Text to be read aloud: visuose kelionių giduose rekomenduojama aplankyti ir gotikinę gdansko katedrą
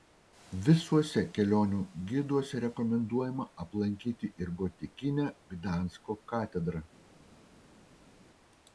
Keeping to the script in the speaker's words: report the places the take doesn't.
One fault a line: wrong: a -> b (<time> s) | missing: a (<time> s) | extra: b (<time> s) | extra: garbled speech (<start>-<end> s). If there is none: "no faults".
no faults